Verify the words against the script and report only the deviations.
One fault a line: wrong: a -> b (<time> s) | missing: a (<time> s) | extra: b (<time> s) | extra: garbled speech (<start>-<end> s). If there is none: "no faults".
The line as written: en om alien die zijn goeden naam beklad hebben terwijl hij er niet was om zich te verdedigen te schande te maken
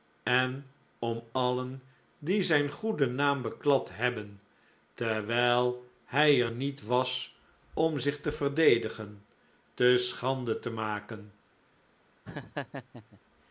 no faults